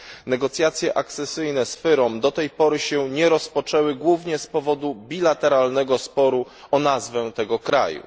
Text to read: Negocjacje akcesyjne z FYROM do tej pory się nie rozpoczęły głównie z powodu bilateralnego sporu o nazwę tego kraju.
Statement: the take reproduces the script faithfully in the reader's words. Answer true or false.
true